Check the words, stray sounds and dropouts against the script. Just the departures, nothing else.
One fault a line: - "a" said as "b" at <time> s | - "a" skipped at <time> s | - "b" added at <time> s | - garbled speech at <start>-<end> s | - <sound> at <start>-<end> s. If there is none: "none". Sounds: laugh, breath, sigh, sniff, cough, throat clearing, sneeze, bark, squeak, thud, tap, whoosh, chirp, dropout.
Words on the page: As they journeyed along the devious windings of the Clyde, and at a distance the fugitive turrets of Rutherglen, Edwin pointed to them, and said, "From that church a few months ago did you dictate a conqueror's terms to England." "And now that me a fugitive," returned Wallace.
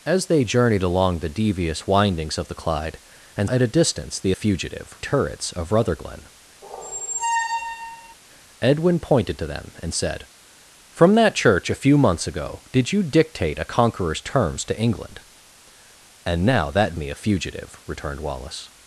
- squeak at 6.6-8.1 s